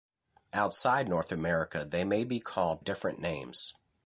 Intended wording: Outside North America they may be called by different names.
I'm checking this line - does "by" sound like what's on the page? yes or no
no